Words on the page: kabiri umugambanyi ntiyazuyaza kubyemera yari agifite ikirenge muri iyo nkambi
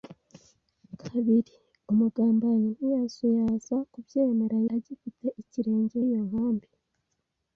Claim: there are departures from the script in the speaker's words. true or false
true